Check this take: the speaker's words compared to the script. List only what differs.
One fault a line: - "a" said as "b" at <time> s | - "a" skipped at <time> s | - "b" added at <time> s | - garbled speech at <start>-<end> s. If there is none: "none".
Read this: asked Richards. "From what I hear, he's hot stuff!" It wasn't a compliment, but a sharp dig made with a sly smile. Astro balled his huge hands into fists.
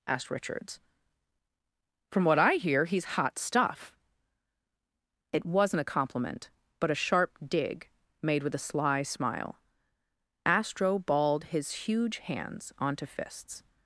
- "into" said as "onto" at 12.8 s